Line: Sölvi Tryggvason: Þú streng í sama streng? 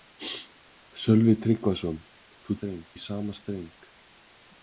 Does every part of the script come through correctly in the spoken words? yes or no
yes